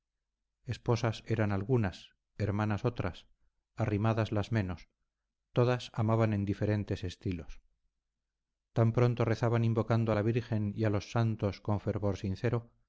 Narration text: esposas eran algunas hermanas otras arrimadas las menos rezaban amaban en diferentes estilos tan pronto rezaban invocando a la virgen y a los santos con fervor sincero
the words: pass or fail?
fail